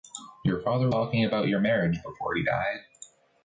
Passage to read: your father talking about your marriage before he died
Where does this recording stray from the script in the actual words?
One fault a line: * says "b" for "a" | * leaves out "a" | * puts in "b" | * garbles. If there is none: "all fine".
all fine